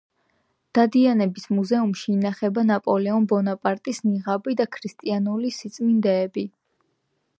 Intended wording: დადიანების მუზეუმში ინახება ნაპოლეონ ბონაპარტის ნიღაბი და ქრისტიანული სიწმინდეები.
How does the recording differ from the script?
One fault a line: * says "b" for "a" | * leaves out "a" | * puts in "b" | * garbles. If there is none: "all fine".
all fine